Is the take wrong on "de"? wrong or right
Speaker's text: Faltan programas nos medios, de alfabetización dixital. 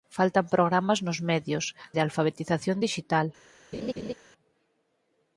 right